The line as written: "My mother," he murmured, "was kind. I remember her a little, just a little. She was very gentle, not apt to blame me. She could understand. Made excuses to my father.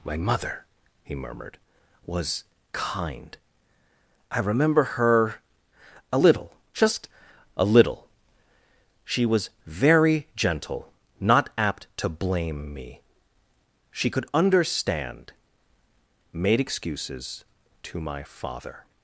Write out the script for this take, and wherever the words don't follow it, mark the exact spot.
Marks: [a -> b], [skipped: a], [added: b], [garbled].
"My mother," he murmured, "was kind. I remember her a little, just a little. She was very gentle, not apt to blame me. She could understand. Made excuses to my father.